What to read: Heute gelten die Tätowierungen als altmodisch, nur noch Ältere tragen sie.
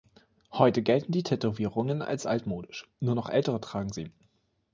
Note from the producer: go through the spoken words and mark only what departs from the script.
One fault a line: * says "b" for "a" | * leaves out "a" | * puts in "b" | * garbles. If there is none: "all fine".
all fine